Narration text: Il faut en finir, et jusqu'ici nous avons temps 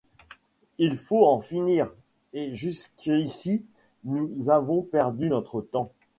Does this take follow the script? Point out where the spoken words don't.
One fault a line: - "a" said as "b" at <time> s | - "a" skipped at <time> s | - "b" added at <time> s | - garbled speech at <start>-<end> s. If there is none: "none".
- "perdu notre" added at 4.8 s